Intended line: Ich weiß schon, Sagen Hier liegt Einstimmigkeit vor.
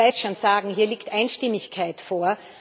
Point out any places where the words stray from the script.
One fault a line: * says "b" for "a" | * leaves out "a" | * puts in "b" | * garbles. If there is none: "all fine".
all fine